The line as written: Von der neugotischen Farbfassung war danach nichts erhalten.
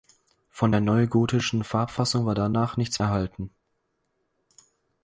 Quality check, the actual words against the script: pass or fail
pass